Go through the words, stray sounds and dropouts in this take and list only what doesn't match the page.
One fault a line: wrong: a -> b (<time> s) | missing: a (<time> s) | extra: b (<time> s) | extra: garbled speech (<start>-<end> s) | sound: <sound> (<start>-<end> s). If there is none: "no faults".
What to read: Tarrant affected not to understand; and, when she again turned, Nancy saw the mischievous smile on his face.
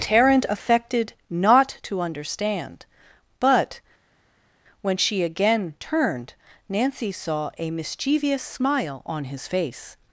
wrong: and -> but (3.4 s)
wrong: the -> a (7.6 s)